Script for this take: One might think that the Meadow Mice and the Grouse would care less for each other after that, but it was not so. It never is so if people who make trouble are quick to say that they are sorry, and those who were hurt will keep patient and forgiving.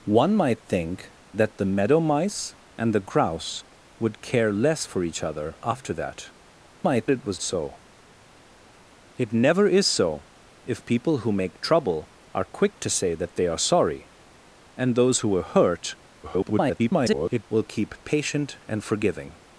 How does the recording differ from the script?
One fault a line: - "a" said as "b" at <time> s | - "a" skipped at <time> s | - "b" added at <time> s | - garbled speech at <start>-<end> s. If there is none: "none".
- "but" said as "might" at 6.8 s
- "not" skipped at 7.4 s
- garbled speech at 16.2-17.4 s